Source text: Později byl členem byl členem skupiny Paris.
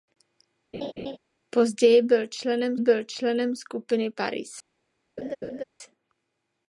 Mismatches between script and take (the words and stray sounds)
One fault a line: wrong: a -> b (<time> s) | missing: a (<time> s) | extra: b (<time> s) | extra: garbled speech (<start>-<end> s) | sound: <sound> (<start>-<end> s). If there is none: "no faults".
sound: laugh (0.7-1.2 s)
sound: laugh (5.2-5.6 s)